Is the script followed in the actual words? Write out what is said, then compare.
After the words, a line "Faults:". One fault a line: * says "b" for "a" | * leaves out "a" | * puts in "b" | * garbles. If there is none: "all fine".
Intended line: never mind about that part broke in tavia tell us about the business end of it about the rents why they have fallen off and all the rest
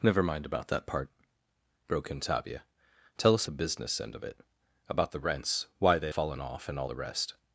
never mind about that part broke in tavia tell us the business end of it about the rents why they fallen off and all the rest
Faults:
* leaves out "about"
* leaves out "have"